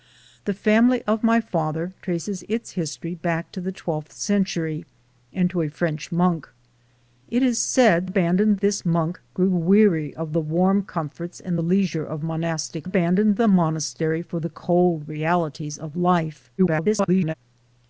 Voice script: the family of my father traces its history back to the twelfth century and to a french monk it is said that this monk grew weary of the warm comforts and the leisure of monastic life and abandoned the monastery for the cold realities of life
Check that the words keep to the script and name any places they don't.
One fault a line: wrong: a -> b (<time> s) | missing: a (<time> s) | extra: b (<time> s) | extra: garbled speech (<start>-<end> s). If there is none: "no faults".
wrong: that -> abandoned (8.0 s)
missing: life and (12.9 s)
extra: garbled speech (16.6-17.3 s)